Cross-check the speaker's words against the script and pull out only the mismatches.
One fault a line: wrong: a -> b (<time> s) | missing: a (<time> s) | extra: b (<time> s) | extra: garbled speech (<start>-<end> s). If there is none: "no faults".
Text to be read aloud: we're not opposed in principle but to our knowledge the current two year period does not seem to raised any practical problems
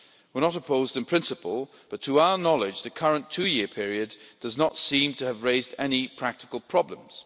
extra: have (5.2 s)